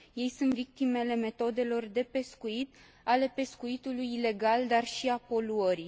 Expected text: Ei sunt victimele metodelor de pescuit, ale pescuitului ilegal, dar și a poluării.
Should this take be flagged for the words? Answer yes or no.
no